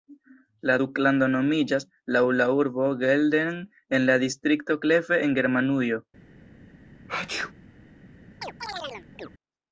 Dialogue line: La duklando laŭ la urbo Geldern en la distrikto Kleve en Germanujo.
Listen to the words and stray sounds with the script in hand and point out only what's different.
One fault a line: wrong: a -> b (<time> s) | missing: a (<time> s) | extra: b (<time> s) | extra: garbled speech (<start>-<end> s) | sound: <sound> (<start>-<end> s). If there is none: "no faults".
extra: nomiĝas (1.4 s)
sound: sneeze (7.1-7.5 s)
sound: chirp (8.4-9.3 s)